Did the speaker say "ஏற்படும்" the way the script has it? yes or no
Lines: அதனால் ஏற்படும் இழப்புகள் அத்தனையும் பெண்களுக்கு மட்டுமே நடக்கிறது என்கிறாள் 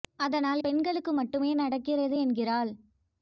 no